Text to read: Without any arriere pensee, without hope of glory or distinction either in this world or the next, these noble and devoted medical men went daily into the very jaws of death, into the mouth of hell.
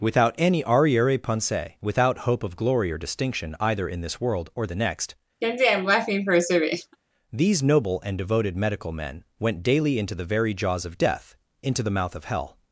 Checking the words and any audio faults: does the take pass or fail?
fail